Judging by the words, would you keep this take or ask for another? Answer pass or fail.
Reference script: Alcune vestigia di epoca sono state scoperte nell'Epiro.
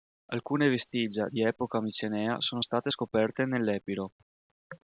fail